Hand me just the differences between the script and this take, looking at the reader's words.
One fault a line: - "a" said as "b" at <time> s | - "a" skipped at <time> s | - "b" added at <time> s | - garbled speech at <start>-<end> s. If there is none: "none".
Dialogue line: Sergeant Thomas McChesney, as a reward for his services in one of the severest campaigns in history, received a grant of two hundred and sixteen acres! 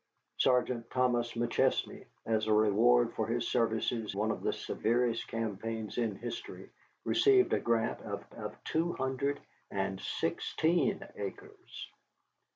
- "in" skipped at 4.2 s
- "of" added at 8.3 s